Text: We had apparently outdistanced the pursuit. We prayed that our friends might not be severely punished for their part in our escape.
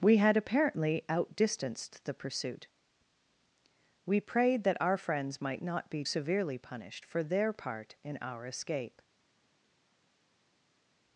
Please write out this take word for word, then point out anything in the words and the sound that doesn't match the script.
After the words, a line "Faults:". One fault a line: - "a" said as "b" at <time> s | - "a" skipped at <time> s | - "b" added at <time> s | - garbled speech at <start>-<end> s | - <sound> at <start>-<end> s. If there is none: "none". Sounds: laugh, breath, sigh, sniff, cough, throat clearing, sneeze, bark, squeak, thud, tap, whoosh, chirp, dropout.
We had apparently outdistanced the pursuit. We prayed that our friends might not be severely punished for their part in our escape.
Faults:
none